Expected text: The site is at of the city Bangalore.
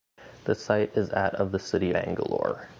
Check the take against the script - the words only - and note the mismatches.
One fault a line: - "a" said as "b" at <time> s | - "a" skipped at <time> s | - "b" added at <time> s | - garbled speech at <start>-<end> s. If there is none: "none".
none